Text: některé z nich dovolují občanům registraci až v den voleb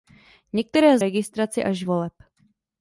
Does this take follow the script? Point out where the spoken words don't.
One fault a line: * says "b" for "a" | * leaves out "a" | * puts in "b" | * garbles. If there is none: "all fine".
* leaves out "nich dovolují občanům"
* leaves out "v den"